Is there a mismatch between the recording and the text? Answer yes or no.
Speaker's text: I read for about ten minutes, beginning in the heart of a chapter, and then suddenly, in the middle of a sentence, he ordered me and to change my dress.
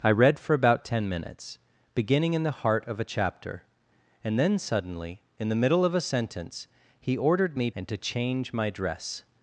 no